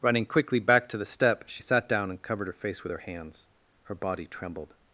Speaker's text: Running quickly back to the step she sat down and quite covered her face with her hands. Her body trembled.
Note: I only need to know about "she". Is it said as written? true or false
true